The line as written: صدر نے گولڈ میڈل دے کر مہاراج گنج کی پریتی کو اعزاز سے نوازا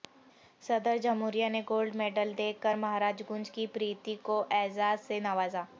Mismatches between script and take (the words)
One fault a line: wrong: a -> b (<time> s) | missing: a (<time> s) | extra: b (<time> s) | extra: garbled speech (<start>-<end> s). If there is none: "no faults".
extra: جمہوریہ (1.0 s)